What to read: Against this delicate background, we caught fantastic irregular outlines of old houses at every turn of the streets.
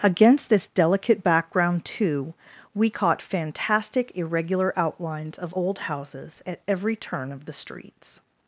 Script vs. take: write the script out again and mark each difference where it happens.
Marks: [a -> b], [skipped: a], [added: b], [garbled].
Against this delicate background, [added: too] we caught fantastic irregular outlines of old houses at every turn of the streets.